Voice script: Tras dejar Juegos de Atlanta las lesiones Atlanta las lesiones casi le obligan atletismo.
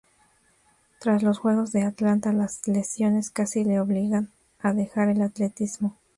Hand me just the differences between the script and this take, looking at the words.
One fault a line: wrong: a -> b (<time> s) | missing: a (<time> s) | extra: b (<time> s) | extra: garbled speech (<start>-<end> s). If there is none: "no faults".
wrong: dejar -> los (1.2 s)
wrong: Atlanta las lesiones casi le obligan -> casi le obligan a dejar el (3.3 s)